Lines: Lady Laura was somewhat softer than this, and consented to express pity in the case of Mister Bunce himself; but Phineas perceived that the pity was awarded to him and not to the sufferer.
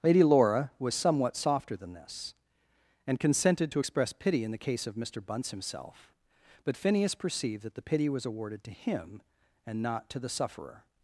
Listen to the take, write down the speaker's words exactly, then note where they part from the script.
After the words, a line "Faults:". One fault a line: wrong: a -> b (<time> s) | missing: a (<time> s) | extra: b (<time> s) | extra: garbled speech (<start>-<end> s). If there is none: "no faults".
Lady Laura was somewhat softer than this, and consented to express pity in the case of Mister Bunce himself; but Phineas perceived that the pity was awarded to him and not to the sufferer.
Faults:
no faults